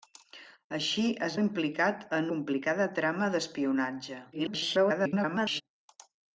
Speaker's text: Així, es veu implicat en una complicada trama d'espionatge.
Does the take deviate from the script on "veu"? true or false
true